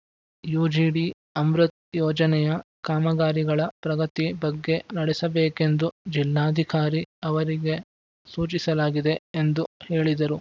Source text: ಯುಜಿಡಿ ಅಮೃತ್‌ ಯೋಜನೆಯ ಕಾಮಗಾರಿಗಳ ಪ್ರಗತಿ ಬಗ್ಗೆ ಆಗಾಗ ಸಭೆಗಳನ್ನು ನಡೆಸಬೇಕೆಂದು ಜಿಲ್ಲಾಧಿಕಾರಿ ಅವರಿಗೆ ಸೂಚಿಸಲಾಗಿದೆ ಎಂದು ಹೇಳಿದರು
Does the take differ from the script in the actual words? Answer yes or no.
yes